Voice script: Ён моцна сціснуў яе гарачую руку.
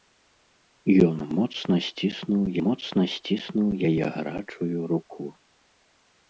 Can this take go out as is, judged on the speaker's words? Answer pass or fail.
fail